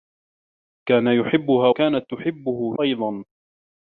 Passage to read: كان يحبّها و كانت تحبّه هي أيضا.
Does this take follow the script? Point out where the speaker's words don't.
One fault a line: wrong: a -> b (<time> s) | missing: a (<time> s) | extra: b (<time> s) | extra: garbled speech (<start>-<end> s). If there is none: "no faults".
missing: و (1.7 s)
missing: هي (2.8 s)